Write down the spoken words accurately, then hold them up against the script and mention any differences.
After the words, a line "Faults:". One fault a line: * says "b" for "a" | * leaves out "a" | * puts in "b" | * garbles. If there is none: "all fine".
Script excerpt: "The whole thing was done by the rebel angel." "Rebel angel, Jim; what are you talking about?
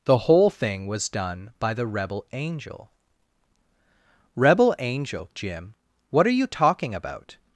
"The whole thing was done by the rebel angel." "Rebel angel, Jim; what are you talking about?
Faults:
all fine